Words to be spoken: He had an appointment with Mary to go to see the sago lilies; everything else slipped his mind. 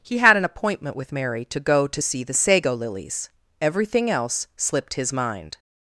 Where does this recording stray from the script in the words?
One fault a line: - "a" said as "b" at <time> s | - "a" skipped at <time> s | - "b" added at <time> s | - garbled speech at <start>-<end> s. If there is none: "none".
none